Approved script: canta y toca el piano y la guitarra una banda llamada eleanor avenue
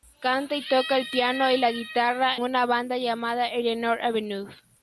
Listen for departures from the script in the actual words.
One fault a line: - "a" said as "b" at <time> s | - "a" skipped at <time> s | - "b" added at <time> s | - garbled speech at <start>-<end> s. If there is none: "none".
none